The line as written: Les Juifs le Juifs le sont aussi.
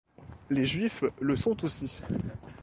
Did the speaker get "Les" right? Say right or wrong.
right